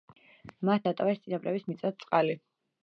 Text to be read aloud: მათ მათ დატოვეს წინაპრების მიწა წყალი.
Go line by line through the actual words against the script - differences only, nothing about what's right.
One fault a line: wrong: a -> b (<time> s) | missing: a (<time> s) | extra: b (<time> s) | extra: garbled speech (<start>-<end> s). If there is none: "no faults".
missing: მათ (0.9 s)